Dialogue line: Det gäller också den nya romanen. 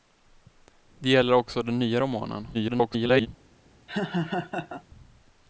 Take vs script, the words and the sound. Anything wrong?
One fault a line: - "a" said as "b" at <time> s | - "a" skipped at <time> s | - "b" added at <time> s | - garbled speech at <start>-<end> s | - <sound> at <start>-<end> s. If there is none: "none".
- garbled speech at 2.5-3.3 s
- laugh at 3.9-4.8 s